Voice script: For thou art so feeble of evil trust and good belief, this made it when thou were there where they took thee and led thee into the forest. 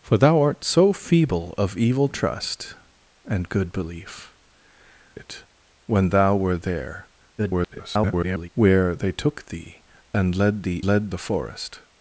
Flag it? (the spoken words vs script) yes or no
yes